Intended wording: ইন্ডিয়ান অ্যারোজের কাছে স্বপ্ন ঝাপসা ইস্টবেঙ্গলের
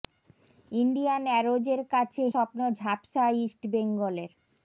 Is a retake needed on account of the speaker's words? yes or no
no